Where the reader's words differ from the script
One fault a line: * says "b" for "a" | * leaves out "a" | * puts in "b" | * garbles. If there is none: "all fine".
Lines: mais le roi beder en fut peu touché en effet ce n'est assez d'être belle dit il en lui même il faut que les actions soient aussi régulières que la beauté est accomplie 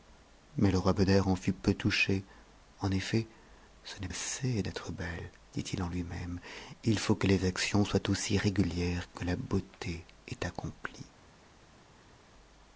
all fine